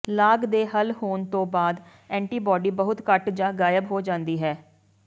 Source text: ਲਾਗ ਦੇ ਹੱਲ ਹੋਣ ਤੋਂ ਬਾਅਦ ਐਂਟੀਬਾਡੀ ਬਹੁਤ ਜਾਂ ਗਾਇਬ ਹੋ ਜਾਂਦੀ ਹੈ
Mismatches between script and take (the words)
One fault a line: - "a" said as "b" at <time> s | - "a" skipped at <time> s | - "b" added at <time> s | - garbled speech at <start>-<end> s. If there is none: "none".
- "ਘੱਟ" added at 3.1 s